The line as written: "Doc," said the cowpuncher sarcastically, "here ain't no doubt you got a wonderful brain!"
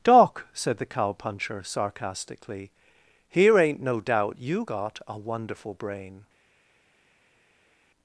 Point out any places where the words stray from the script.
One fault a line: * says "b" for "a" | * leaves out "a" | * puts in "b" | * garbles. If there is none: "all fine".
all fine